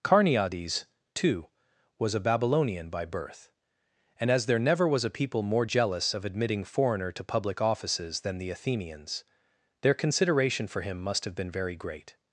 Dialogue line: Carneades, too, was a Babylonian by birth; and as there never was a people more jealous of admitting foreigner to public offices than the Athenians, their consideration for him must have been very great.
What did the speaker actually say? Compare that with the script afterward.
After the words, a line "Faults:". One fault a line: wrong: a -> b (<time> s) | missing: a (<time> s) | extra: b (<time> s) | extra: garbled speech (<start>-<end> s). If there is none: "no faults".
Carneades, too, was a Babylonian by birth; and as there never was a people more jealous of admitting foreigner to public offices than the Athenians, their consideration for him must have been very great.
Faults:
no faults